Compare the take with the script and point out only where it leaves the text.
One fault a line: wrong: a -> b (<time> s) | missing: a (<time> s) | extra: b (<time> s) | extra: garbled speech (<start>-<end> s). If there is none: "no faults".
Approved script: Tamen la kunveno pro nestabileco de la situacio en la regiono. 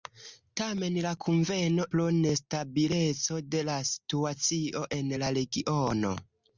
no faults